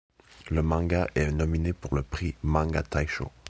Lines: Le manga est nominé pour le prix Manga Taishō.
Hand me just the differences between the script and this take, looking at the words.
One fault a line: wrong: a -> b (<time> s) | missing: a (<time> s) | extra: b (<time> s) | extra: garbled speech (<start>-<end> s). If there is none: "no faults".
no faults